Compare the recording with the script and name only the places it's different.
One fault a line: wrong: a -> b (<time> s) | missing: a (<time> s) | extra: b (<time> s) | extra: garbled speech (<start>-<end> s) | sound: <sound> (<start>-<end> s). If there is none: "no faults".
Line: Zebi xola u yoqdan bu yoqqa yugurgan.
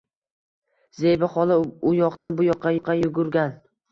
sound: dropout (2.2-2.3 s)
extra: yoqqa (2.7 s)